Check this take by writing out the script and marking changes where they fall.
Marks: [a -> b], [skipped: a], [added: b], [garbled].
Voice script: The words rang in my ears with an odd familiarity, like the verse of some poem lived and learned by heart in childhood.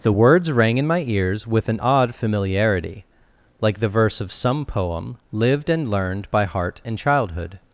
The words rang in my ears with an odd familiarity, like the verse of some poem lived and learned by heart in childhood.